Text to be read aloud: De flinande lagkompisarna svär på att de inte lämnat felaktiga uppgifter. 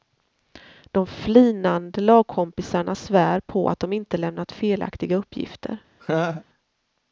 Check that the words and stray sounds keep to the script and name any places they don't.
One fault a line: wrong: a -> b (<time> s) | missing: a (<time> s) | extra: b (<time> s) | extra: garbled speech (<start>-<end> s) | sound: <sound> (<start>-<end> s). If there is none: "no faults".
sound: laugh (6.0-6.4 s)